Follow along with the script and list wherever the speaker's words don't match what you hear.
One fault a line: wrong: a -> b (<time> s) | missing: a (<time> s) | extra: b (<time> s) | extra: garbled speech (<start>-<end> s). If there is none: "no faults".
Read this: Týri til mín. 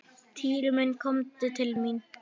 extra: minn komdu (0.8 s)